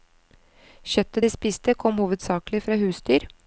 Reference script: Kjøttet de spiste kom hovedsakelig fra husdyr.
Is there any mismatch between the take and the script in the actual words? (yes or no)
no